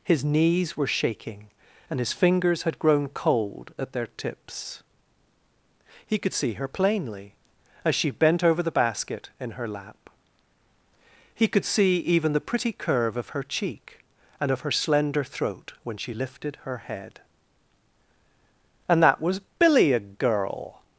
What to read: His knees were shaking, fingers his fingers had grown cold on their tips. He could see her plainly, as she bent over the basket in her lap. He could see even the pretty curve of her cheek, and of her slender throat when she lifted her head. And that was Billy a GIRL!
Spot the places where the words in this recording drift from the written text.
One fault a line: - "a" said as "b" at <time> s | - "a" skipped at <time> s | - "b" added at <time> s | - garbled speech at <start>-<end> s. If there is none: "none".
- "fingers" said as "and" at 1.9 s
- "on" said as "at" at 3.8 s